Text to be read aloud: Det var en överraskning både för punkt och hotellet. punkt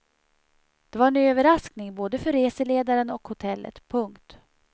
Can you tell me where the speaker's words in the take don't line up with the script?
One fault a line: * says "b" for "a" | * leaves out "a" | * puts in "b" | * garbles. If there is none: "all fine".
* says "reseledaren" for "punkt"